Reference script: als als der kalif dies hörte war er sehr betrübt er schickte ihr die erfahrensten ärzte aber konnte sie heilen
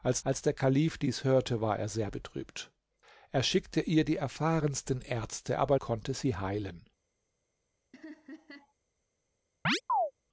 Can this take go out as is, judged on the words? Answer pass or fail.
pass